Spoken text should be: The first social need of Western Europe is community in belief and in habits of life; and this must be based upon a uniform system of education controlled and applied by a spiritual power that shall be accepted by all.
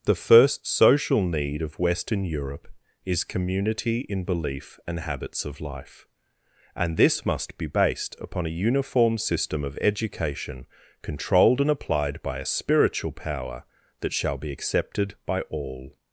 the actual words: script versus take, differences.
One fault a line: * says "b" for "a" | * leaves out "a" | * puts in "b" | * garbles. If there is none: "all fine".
* leaves out "in"